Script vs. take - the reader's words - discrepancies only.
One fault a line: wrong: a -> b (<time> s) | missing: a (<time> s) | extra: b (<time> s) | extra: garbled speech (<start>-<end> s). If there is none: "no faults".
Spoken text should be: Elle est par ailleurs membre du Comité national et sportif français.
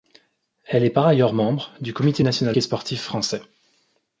no faults